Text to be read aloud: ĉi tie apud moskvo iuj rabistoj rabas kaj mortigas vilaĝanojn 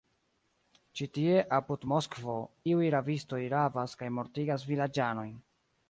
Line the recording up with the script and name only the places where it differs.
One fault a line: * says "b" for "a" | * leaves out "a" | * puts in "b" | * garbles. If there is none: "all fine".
all fine